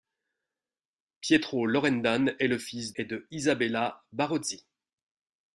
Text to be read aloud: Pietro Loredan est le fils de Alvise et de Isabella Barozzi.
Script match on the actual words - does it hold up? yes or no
no